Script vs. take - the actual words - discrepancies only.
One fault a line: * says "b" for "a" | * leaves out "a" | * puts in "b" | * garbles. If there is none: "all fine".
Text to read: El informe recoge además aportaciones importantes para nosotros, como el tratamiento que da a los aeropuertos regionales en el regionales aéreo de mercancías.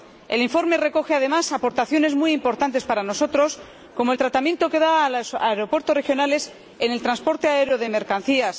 * puts in "muy"
* says "transporte" for "regionales"